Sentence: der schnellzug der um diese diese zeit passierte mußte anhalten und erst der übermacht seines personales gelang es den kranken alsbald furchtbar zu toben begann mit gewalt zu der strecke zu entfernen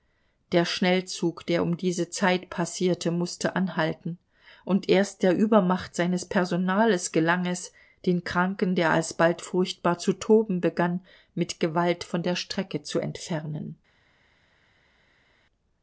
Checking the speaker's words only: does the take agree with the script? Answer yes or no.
no